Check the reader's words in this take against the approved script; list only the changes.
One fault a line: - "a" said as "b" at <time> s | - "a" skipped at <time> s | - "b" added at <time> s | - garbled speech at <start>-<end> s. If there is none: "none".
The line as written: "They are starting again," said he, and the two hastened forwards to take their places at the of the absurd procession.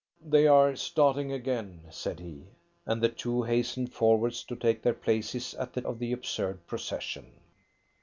none